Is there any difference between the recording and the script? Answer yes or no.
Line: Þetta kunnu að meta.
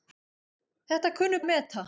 no